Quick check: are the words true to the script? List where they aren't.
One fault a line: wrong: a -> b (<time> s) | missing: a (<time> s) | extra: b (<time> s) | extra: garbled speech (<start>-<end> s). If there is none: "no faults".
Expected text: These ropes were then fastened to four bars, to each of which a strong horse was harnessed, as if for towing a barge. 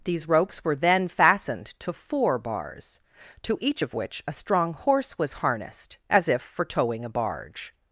no faults